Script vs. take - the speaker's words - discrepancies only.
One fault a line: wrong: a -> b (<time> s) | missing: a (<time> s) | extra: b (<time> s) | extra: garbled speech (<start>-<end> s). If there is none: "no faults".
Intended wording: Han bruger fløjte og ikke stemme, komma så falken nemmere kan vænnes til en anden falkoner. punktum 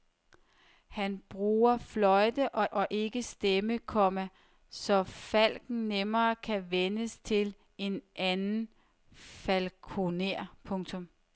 extra: og (2.7 s)